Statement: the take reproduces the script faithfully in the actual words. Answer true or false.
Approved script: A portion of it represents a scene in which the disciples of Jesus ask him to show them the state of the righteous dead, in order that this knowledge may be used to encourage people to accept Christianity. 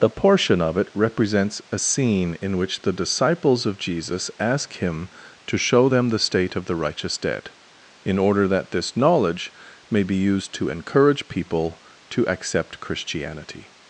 false